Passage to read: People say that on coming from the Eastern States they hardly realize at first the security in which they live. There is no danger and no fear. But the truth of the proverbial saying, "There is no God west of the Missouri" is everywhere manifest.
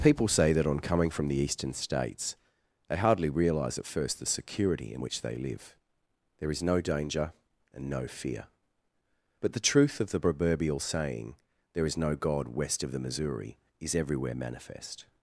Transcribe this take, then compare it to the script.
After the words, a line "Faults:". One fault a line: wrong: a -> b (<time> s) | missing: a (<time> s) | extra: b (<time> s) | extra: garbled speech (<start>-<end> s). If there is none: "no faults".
People say that on coming from the Eastern States they hardly realize at first the security in which they live. There is no danger and no fear. But the truth of the proverbial saying, "There is no God west of the Missouri" is everywhere manifest.
Faults:
no faults